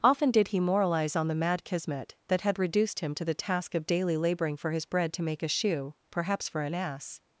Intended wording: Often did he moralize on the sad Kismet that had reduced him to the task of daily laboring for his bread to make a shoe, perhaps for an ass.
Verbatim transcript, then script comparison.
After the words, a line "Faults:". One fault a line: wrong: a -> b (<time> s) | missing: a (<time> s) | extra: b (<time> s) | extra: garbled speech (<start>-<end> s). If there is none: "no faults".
Often did he moralize on the mad Kismet that had reduced him to the task of daily laboring for his bread to make a shoe, perhaps for an ass.
Faults:
wrong: sad -> mad (1.4 s)